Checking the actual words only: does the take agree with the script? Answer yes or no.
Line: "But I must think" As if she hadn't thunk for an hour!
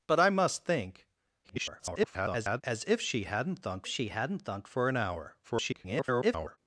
no